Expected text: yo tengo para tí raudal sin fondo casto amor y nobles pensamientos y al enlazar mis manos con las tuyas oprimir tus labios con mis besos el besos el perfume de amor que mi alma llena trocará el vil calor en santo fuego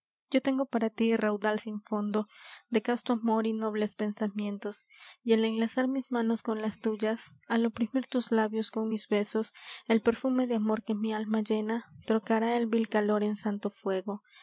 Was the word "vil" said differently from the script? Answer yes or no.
no